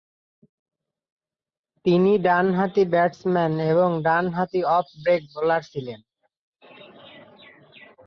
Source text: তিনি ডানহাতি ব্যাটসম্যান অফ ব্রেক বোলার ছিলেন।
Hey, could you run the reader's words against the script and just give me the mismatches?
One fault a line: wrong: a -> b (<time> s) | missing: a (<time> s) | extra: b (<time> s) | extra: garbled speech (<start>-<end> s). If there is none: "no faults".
extra: এবং ডানহাতি (3.7 s)